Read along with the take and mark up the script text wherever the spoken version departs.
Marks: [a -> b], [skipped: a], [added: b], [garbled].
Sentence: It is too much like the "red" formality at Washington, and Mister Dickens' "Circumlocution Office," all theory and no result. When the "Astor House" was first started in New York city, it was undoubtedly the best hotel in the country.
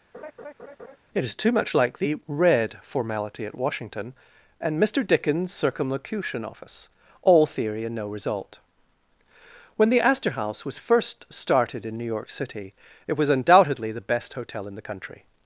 It is too much like the "red" formality at Washington, and Mister Dickens' "Circumlocution Office," all theory and no result. When the "Astor House" was first started in New York city, it was undoubtedly the best hotel in the country.